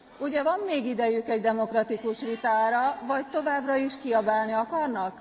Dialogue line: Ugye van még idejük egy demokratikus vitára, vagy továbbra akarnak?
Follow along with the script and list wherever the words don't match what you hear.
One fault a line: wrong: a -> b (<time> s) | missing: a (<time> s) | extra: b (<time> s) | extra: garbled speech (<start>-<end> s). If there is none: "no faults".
extra: is kiabálni (3.7 s)